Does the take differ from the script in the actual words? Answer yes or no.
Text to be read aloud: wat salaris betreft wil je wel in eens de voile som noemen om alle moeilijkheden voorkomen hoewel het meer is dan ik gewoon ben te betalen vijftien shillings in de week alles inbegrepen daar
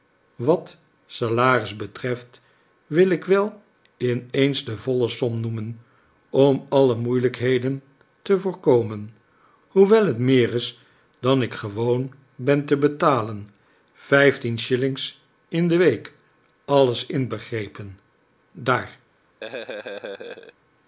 yes